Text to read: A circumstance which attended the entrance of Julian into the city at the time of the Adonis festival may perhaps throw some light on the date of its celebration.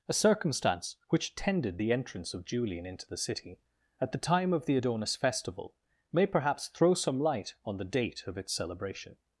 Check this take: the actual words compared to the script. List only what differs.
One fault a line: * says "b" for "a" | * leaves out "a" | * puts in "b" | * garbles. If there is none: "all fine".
* says "tended" for "attended"